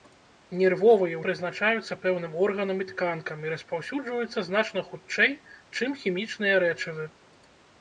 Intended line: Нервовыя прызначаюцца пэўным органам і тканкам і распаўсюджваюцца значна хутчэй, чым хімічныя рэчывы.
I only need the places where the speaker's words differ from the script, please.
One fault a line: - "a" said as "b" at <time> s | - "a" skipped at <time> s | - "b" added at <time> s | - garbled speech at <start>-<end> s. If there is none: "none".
none